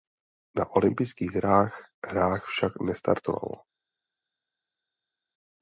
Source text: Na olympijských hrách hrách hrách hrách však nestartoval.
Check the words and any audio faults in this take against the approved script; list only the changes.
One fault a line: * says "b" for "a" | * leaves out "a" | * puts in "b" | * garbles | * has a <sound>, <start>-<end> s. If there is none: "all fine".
* leaves out "hrách hrách"